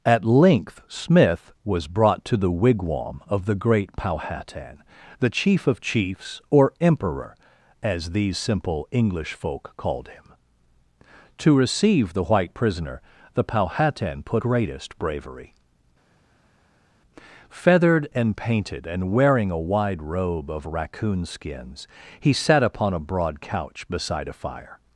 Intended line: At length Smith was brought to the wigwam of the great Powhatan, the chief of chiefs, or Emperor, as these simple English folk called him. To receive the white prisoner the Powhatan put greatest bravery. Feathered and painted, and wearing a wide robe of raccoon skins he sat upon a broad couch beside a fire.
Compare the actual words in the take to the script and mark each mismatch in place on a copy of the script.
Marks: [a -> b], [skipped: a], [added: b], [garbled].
At length Smith was brought to the wigwam of the great Powhatan, the chief of chiefs, or Emperor, as these simple English folk called him. To receive the white prisoner the Powhatan put greatest bravery. Feathered and painted, and wearing a wide robe of raccoon skins he sat upon a broad couch beside a fire.